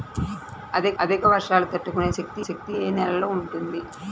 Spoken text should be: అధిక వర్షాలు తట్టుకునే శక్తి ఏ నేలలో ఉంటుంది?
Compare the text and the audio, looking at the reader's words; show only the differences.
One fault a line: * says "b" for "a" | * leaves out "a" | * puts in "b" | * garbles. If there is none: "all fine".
* puts in "అధిక"
* puts in "శక్తి"